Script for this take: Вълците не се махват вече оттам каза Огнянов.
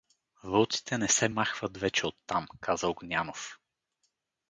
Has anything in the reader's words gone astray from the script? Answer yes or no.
no